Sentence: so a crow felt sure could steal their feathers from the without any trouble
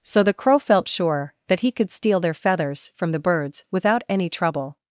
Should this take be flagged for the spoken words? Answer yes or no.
yes